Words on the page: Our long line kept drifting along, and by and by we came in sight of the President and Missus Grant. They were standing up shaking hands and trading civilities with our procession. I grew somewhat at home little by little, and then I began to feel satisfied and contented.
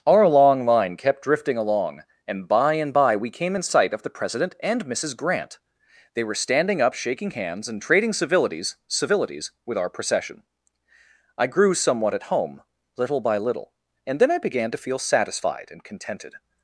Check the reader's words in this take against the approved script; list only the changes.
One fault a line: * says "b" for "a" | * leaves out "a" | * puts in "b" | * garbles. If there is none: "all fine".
* puts in "civilities"